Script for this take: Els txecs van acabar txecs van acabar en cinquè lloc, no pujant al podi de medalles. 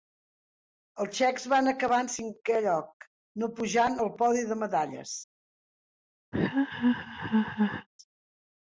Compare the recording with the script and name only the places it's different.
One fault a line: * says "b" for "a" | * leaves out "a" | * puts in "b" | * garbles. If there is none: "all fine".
* leaves out "txecs van acabar"